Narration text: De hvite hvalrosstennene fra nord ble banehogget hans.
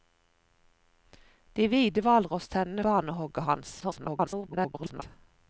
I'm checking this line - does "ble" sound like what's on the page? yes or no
no